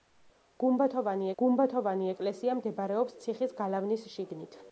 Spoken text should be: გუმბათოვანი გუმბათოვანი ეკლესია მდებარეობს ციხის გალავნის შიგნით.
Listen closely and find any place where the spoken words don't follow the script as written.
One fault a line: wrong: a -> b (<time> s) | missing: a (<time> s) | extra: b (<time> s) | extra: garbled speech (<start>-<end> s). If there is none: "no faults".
no faults